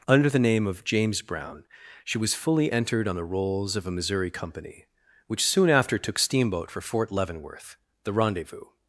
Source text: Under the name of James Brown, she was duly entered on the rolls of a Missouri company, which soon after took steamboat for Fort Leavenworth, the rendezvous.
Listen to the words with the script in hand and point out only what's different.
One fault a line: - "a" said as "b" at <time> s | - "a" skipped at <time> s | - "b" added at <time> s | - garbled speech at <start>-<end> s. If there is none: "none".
- "duly" said as "fully" at 2.3 s